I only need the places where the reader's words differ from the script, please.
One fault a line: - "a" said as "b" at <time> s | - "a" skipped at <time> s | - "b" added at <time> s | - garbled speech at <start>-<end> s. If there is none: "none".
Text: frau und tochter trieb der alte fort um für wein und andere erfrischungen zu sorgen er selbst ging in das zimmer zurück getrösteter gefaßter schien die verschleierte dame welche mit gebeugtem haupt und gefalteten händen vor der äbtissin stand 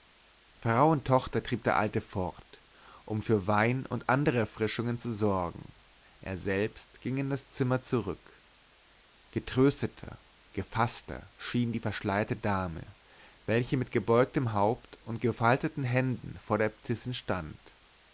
none